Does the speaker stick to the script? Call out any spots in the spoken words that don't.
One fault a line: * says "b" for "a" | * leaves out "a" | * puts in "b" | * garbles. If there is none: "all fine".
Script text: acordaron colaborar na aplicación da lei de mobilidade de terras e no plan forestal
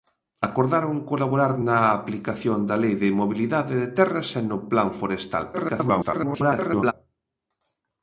* garbles